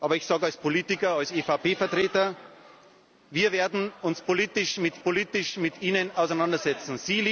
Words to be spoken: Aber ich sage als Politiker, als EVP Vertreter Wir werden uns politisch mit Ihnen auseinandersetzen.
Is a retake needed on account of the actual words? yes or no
yes